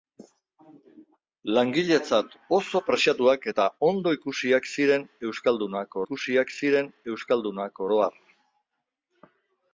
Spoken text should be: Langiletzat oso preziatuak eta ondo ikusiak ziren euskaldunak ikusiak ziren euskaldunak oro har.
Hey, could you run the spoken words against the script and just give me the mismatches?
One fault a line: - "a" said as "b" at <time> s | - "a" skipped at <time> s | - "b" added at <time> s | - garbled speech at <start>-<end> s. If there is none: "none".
none